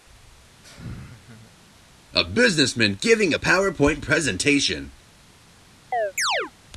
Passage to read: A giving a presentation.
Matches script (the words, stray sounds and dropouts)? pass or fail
fail